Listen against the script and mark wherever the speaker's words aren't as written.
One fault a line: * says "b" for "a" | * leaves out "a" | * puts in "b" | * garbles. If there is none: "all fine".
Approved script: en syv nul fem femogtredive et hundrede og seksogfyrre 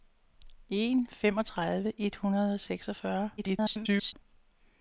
* leaves out "syv nul fem"
* garbles